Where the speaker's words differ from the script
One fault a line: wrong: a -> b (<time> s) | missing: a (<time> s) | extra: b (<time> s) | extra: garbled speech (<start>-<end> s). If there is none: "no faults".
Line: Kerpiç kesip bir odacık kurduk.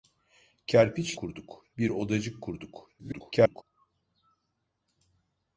wrong: kesip -> kurduk (1.2 s)
extra: garbled speech (3.0-3.6 s)